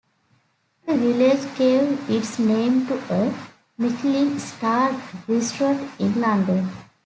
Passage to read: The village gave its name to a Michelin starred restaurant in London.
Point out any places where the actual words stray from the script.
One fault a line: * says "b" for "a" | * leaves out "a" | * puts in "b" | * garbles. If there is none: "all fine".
all fine